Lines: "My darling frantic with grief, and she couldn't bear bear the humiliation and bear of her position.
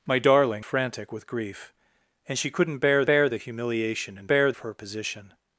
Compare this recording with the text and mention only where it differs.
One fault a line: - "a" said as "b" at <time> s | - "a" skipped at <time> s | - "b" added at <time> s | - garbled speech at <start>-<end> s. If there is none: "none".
none